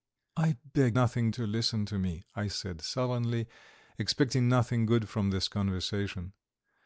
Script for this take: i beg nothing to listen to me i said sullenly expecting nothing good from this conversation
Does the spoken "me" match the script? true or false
true